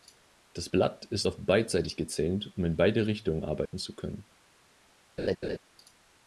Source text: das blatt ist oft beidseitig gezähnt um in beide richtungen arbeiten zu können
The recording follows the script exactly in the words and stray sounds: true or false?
false